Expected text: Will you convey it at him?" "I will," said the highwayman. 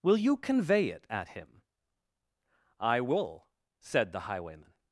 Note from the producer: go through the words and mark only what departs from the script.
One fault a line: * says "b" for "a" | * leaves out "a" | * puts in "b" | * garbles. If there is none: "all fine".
all fine